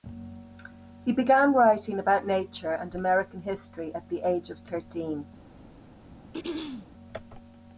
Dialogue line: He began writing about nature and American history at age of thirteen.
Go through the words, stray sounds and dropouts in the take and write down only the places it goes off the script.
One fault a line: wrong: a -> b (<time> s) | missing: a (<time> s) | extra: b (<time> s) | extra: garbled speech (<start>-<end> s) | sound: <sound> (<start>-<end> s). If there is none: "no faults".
extra: the (4.1 s)
sound: throat clearing (6.3-6.9 s)